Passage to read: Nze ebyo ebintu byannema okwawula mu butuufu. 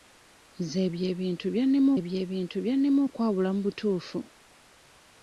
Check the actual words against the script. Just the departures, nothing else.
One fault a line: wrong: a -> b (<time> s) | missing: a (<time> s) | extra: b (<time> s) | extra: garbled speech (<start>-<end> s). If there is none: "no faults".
extra: ebyo ebintu byannema (2.0 s)